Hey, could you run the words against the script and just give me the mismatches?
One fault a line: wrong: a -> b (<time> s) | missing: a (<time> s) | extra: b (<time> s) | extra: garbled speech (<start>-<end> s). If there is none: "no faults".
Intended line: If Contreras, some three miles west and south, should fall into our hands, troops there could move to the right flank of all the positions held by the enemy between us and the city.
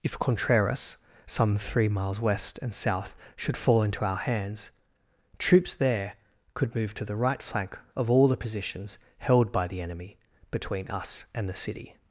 no faults